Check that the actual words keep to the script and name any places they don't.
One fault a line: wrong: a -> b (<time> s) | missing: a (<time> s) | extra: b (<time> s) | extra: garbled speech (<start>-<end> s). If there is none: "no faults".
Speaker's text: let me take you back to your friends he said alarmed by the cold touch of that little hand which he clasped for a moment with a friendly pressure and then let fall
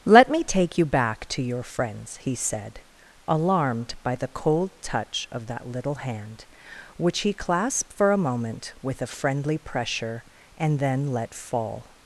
no faults